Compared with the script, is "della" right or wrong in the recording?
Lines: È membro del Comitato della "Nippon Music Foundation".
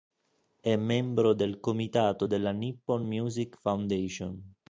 right